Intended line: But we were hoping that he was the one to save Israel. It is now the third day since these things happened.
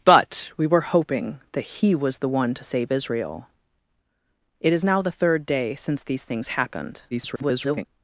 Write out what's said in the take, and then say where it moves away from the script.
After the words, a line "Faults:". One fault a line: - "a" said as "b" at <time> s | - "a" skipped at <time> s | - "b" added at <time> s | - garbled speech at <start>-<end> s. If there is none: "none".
But we were hoping that he was the one to save Israel. It is now the third day since these things happened. [garbled]
Faults:
- garbled speech at 7.1-7.8 s